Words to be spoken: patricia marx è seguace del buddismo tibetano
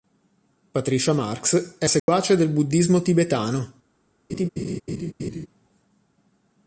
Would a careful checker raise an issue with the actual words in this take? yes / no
no